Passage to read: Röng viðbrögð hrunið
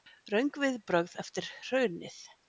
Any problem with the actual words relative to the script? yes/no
yes